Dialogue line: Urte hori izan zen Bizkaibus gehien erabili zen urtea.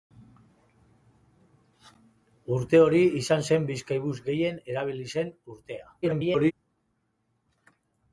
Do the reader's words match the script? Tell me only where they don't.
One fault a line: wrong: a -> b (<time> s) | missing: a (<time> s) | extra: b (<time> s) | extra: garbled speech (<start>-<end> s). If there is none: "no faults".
extra: garbled speech (6.0-6.5 s)